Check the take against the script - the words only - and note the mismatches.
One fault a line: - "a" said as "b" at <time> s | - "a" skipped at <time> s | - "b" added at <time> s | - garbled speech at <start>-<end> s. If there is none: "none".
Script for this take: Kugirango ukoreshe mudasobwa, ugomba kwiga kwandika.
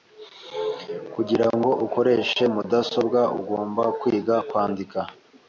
none